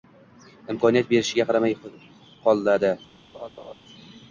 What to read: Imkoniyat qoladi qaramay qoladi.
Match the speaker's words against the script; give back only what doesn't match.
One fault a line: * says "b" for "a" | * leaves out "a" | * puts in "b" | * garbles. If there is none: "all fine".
* says "berishiga" for "qoladi"